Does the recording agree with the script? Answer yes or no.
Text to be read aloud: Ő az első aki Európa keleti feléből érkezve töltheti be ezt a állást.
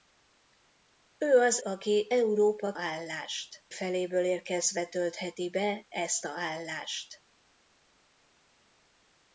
no